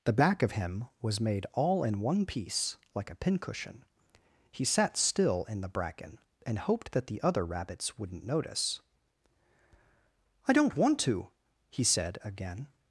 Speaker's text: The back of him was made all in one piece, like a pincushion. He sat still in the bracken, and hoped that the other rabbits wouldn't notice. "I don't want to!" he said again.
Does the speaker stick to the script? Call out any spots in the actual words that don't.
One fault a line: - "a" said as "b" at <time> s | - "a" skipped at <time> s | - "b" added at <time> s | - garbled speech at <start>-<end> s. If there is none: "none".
none